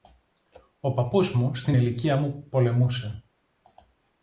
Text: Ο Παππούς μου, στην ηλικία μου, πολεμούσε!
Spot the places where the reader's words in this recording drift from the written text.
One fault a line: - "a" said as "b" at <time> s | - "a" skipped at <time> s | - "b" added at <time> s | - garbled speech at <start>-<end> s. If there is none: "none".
none